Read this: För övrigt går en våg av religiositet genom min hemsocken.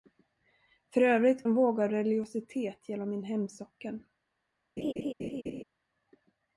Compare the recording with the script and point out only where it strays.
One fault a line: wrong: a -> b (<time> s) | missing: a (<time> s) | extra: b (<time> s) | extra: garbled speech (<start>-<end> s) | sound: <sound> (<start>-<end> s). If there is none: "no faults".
missing: går (1.4 s)
sound: laugh (4.8-5.6 s)